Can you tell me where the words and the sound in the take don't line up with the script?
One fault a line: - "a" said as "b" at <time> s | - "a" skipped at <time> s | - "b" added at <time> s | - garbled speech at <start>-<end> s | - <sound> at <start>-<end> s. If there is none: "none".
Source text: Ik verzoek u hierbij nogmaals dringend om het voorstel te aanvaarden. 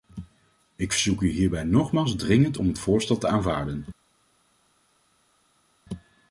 none